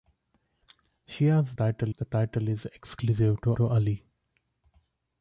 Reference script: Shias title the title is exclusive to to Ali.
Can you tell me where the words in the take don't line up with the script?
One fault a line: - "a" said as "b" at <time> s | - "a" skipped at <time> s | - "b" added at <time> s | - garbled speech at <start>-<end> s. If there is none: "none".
none